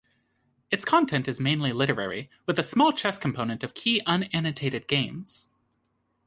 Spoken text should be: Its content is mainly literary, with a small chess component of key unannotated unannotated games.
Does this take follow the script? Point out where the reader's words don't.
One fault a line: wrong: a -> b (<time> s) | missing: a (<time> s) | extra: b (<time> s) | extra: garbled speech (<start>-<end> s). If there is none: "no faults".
missing: unannotated (4.9 s)